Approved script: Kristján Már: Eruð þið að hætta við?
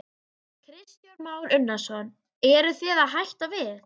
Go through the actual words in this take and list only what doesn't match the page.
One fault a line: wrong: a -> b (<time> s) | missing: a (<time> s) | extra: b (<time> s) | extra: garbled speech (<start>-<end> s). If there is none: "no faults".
extra: Unnarsson (1.6 s)